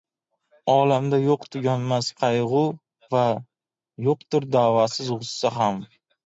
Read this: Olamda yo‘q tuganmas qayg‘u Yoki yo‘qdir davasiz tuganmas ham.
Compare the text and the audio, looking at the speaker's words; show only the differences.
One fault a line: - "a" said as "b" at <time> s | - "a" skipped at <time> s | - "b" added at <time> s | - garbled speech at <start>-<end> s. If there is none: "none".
- "Yoki" said as "Va" at 3.2 s
- "tuganmas" said as "g‘ussa" at 5.2 s